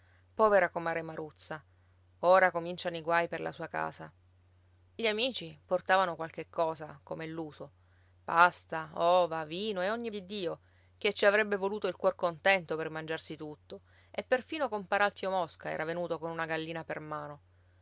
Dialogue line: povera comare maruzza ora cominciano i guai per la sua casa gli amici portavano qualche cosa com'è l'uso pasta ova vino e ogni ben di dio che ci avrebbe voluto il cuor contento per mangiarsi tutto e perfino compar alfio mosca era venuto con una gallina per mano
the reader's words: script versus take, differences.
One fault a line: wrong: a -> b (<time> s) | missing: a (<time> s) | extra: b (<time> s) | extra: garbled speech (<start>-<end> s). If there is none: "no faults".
missing: ben (10.1 s)